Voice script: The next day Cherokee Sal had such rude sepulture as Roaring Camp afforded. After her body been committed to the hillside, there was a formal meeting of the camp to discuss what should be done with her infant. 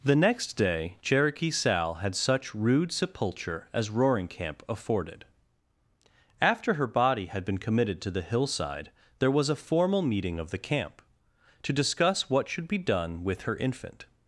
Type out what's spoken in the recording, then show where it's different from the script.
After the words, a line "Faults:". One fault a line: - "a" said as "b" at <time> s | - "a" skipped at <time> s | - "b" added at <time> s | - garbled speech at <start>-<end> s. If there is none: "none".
The next day Cherokee Sal had such rude sepulture as Roaring Camp afforded. After her body had been committed to the hillside, there was a formal meeting of the camp to discuss what should be done with her infant.
Faults:
- "had" added at 7.3 s